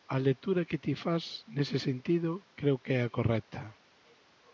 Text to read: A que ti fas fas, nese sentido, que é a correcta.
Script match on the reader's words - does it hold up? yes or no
no